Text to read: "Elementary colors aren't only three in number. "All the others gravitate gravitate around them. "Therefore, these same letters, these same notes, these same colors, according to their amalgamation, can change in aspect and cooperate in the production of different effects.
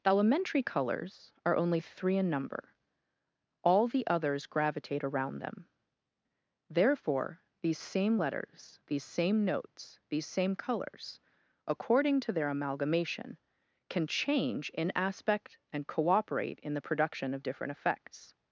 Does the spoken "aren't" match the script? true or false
false